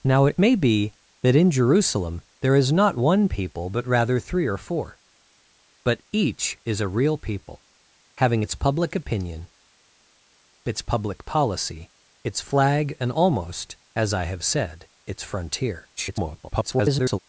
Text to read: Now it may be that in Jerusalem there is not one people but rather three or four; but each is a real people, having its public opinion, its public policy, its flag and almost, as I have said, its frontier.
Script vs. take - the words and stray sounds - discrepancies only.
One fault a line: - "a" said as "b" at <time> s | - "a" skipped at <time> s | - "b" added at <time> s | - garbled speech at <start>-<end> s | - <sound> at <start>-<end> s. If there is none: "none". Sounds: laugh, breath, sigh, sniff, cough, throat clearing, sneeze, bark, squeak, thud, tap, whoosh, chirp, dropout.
- garbled speech at 16.0-17.2 s